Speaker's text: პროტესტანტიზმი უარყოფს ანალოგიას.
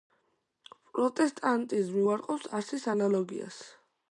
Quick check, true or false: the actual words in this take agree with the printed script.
false